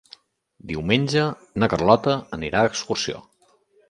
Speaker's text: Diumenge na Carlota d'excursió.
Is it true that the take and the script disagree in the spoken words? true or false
true